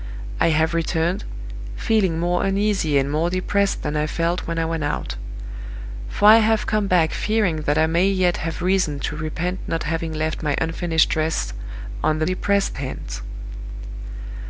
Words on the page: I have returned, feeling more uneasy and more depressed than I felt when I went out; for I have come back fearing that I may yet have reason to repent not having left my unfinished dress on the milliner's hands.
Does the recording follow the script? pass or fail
fail